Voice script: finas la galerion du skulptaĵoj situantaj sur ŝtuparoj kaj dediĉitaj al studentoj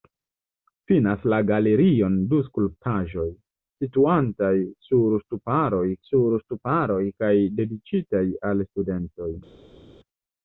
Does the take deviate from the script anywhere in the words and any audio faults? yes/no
yes